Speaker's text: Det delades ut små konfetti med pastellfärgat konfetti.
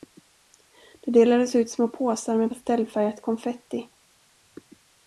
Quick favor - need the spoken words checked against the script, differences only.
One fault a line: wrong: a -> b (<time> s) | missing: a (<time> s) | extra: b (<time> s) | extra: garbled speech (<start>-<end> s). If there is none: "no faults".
wrong: konfetti -> påsar (1.9 s)